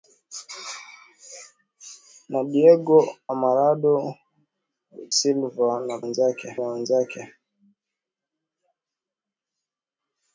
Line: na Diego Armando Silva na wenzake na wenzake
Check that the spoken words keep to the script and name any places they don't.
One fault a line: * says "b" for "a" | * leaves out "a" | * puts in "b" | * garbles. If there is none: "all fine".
all fine